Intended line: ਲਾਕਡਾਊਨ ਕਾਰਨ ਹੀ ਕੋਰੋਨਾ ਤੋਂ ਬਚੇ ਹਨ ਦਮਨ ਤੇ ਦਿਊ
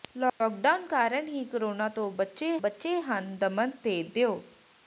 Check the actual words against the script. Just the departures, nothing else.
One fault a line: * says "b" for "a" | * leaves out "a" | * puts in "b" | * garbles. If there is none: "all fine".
* puts in "ਬਚੇ"